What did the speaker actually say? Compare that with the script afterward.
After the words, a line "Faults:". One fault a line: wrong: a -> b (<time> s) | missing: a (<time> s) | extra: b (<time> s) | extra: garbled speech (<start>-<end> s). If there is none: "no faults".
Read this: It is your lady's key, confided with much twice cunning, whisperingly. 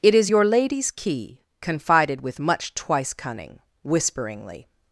It is your lady's key, confided with much twice cunning, whisperingly.
Faults:
no faults